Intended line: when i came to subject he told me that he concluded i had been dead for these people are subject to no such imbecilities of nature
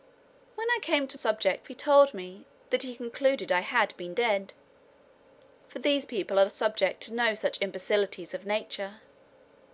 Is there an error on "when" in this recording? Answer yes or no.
no